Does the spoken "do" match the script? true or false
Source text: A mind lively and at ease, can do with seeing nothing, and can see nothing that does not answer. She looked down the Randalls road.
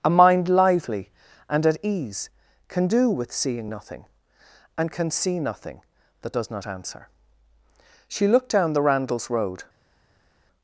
true